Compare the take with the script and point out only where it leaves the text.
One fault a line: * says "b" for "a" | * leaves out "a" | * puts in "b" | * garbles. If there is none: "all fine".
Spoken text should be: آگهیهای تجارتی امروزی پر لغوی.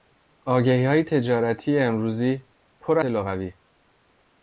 all fine